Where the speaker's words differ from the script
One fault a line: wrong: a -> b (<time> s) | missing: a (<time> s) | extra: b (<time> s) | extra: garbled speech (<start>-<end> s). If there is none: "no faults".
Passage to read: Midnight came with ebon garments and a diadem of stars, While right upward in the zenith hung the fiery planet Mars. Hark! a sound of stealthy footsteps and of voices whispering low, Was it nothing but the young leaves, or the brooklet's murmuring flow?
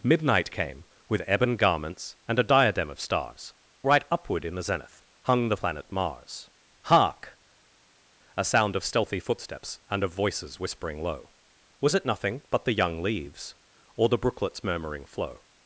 missing: While (3.5 s)
missing: fiery (5.6 s)